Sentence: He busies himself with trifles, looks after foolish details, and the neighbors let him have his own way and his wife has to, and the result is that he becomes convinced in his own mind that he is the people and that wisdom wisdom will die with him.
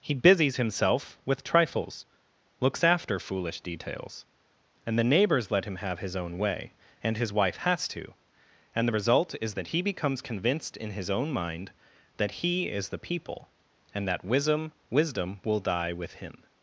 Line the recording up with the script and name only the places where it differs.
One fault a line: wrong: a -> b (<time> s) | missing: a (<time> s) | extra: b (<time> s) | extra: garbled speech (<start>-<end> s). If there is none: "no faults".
no faults